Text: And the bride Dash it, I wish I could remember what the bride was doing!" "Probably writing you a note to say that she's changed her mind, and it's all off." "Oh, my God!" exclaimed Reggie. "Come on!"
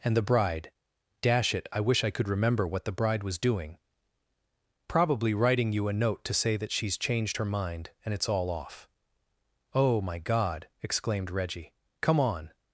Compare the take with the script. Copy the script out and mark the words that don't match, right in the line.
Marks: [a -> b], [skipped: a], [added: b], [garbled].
And the bride Dash it, I wish I could remember what the bride was doing!" "Probably writing you a note to say that she's changed her mind, and it's all off." "Oh, my God!" exclaimed Reggie. "Come on!"